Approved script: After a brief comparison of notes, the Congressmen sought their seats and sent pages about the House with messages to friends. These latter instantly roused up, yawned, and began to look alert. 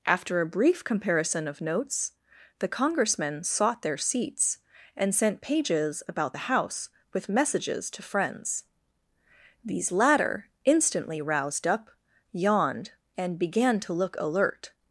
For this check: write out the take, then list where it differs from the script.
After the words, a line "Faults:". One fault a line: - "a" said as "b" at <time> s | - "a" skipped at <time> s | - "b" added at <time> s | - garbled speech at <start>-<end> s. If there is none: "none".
After a brief comparison of notes, the Congressmen sought their seats and sent pages about the House with messages to friends. These latter instantly roused up, yawned, and began to look alert.
Faults:
none